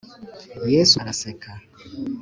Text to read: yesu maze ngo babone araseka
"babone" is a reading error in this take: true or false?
true